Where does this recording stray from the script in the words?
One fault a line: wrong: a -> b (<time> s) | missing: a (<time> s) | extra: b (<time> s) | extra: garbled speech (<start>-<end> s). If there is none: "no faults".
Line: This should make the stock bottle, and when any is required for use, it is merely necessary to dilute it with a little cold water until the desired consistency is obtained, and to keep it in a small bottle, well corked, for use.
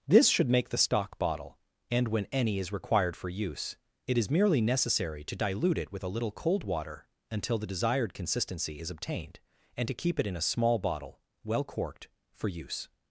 no faults